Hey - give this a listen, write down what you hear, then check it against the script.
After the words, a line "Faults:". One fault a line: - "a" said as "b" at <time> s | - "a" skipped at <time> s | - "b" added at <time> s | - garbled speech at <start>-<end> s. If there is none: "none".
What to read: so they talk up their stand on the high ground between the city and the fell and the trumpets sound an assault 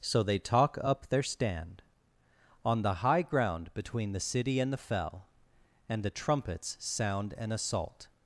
so they talk up their stand on the high ground between the city and the fell and the trumpets sound an assault
Faults:
none